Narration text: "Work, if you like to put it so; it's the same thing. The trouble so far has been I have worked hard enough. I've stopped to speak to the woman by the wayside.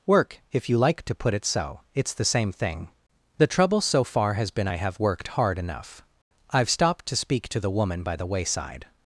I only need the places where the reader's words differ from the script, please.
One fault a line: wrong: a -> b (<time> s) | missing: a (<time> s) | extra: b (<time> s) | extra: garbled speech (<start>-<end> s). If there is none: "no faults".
no faults